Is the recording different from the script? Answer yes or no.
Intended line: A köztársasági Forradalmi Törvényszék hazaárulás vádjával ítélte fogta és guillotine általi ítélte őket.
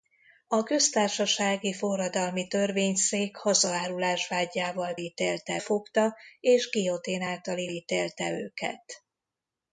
no